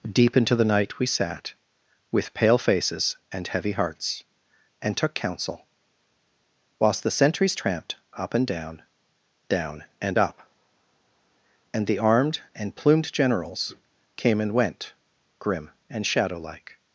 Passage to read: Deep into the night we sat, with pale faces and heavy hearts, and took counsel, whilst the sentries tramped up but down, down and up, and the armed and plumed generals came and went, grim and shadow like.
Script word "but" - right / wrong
wrong